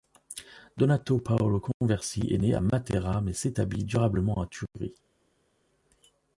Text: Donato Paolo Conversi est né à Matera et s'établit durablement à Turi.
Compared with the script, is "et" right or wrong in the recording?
wrong